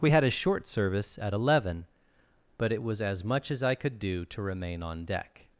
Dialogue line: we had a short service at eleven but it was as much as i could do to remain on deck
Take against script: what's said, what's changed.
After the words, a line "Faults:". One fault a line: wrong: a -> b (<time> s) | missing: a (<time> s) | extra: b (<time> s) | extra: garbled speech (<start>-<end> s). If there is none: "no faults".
we had a short service at eleven but it was as much as i could do to remain on deck
Faults:
no faults